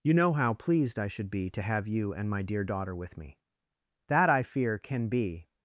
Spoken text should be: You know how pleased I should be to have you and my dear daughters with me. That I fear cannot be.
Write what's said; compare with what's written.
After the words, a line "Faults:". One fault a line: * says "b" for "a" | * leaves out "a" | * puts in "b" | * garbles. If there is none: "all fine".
You know how pleased I should be to have you and my dear daughter with me. That I fear can be.
Faults:
* says "daughter" for "daughters"
* says "can" for "cannot"